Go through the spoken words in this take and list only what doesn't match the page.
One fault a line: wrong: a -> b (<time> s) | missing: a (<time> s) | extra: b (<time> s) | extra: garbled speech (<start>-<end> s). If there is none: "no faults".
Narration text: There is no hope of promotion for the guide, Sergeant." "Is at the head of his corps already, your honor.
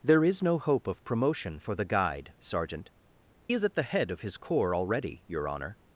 no faults